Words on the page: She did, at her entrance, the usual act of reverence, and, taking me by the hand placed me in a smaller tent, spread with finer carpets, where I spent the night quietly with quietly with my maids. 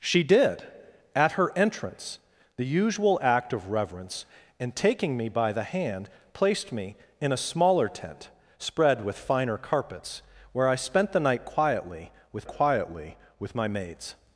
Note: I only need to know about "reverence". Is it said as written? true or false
true